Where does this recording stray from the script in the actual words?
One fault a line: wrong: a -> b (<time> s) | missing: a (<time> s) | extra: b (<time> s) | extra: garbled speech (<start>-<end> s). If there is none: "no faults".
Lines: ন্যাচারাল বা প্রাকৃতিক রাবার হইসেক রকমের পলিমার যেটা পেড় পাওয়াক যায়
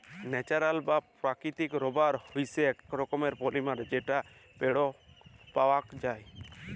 no faults